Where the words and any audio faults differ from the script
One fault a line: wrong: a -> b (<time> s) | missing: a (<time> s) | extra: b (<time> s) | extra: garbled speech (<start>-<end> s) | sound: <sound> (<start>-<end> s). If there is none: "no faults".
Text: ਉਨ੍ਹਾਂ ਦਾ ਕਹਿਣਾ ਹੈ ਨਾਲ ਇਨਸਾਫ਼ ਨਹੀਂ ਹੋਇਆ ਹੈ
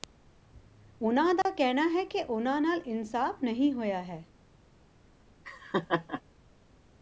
sound: dropout (1.4-1.5 s)
extra: ਕਿ ਉਨ੍ਹਾਂ (2.0 s)
sound: laugh (5.4-6.2 s)